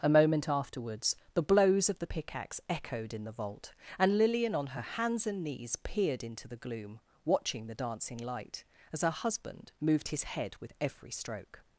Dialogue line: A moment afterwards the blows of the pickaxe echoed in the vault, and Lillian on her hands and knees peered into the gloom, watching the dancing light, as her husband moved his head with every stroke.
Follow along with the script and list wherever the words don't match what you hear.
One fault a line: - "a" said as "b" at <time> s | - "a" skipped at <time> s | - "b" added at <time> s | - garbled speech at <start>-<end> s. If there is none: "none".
none